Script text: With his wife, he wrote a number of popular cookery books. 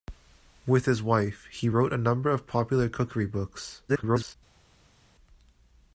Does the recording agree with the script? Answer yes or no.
no